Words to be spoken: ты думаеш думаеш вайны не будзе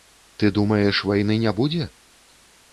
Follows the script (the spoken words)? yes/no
no